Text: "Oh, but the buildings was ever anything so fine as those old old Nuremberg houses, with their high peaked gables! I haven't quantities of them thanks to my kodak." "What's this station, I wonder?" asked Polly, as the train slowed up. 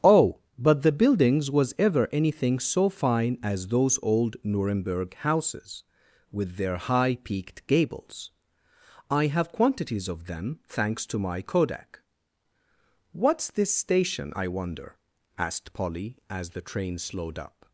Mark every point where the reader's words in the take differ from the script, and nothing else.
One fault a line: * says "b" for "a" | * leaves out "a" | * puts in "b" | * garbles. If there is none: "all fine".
* leaves out "old"
* says "have" for "haven't"